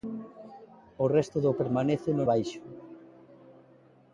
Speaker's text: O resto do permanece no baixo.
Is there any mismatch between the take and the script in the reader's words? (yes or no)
no